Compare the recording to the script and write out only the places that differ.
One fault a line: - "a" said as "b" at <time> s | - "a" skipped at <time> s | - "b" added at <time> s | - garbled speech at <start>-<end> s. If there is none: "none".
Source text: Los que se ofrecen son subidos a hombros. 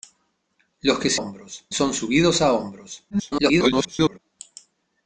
- "ofrecen" said as "hombros" at 1.1 s
- garbled speech at 3.1-4.2 s